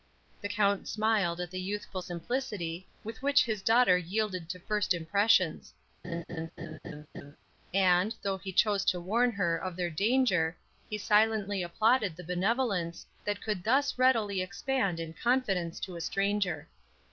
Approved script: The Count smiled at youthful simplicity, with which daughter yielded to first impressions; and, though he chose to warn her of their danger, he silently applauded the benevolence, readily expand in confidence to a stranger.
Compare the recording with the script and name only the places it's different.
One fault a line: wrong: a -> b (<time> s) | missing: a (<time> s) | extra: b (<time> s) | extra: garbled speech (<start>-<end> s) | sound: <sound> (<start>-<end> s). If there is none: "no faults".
extra: the (1.5 s)
extra: his (3.5 s)
sound: laugh (6.0-7.4 s)
extra: that could thus (13.3 s)